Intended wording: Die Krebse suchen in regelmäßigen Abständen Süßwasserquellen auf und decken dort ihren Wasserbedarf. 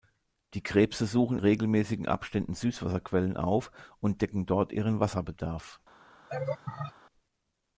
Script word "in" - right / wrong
wrong